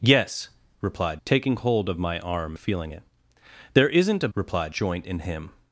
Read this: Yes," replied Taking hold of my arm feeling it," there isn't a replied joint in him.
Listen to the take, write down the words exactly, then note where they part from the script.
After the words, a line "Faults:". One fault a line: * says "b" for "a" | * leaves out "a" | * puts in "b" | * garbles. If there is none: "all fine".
Yes," replied Taking hold of my arm feeling it," there isn't a replied joint in him.
Faults:
all fine